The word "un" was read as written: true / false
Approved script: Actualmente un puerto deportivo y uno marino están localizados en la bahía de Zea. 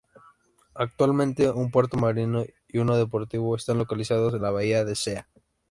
true